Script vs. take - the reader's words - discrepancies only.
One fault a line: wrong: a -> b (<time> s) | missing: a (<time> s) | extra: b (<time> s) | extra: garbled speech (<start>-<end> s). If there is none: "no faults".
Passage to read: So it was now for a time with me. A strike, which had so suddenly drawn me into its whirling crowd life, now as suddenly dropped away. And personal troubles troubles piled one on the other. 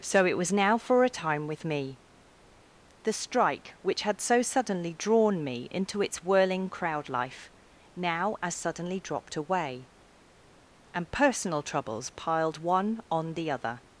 wrong: A -> The (3.0 s)
missing: troubles (12.1 s)